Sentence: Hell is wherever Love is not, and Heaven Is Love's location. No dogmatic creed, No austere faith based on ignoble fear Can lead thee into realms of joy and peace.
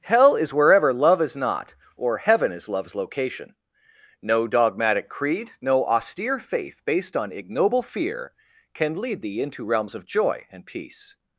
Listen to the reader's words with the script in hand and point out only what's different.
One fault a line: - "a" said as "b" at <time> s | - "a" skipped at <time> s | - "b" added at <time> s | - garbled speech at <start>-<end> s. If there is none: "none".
- "and" said as "or" at 1.9 s